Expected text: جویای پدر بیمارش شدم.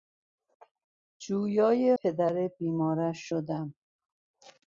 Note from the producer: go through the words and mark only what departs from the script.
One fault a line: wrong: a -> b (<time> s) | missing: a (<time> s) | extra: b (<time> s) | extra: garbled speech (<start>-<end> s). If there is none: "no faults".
no faults